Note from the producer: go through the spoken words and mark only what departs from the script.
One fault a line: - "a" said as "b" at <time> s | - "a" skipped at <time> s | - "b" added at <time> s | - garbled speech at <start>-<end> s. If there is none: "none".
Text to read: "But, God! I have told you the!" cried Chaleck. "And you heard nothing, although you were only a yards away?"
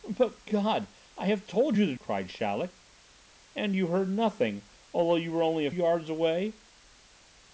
none